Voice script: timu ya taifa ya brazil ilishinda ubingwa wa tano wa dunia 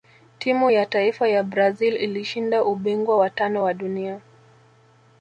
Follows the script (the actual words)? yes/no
yes